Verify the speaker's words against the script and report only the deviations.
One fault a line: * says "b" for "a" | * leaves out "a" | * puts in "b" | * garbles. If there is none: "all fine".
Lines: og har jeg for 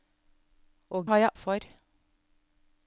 all fine